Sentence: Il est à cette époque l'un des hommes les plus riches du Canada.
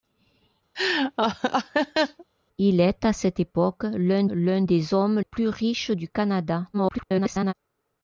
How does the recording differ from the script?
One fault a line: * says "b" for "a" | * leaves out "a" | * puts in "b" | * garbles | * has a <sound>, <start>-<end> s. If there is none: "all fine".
* has a laugh, 0.7-2.2 s
* puts in "l'un"
* leaves out "les"
* garbles